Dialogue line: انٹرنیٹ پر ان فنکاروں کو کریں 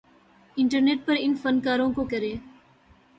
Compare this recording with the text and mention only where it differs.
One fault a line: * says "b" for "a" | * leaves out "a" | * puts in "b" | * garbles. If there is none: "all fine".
all fine